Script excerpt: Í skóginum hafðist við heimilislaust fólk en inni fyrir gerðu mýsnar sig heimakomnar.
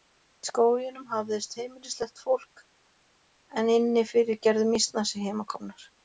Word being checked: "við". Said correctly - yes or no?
no